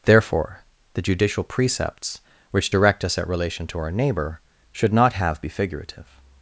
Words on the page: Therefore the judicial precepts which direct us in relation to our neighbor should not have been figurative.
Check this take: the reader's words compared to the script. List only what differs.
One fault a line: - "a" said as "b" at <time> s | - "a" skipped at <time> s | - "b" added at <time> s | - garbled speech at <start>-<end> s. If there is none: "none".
- "in" said as "at" at 3.2 s
- "been" said as "be" at 5.4 s